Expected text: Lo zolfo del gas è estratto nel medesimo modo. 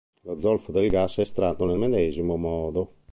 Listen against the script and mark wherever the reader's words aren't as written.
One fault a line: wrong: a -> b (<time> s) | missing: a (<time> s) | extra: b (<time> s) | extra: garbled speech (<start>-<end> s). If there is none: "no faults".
no faults